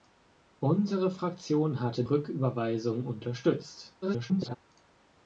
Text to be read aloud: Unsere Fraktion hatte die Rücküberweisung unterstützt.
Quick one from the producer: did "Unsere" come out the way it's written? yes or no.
yes